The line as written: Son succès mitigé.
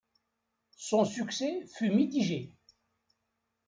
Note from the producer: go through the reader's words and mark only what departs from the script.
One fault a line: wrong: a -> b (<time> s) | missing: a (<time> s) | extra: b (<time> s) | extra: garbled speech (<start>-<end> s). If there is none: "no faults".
extra: fut (1.6 s)